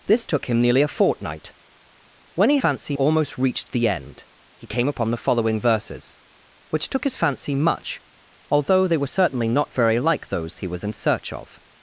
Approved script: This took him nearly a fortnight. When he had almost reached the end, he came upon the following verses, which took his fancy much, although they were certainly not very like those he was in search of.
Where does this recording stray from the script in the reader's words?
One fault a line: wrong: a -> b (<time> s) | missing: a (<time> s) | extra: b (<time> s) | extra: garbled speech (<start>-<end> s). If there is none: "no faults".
wrong: had -> fancy (2.6 s)